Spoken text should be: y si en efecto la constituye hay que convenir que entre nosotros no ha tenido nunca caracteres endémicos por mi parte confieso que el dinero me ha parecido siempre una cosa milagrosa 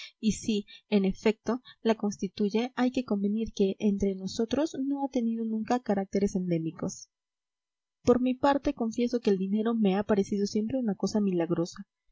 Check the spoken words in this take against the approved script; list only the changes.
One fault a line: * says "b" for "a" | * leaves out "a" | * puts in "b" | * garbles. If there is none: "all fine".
all fine